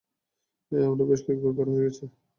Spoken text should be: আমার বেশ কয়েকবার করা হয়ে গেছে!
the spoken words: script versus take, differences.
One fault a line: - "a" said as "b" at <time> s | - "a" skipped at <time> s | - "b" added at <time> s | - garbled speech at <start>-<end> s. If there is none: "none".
none